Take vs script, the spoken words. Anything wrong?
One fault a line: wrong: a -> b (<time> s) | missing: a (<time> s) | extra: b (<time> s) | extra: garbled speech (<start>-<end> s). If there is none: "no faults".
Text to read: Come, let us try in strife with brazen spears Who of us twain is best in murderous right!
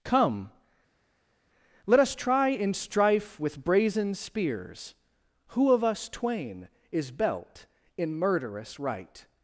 wrong: best -> belt (7.1 s)